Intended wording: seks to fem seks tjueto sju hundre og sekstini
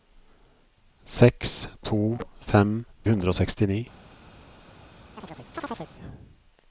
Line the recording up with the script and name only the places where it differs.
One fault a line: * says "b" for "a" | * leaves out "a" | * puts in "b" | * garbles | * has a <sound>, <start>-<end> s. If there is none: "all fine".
* leaves out "seks tjueto sju"
* has a chirp, 5.2-5.9 s